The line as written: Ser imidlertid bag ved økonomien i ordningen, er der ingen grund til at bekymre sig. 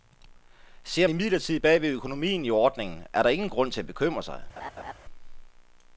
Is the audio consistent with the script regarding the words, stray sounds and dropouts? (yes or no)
no